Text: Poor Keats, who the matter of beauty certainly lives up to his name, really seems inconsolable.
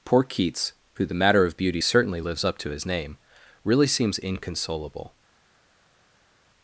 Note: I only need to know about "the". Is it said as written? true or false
true